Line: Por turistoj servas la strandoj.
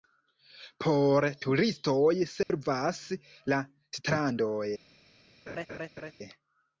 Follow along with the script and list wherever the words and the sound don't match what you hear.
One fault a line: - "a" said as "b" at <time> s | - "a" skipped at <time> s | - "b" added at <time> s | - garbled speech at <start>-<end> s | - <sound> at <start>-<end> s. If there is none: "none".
- dropout at 2.4-2.5 s
- laugh at 5.5-6.1 s